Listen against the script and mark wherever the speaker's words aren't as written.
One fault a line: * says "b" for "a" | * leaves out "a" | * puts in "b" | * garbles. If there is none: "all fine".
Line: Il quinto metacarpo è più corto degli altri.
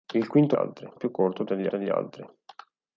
* says "altri" for "metacarpo"
* puts in "degli"